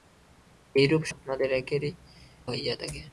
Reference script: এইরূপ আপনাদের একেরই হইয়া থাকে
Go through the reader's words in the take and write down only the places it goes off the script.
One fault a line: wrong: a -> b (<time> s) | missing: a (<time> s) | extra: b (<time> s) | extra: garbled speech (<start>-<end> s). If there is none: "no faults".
no faults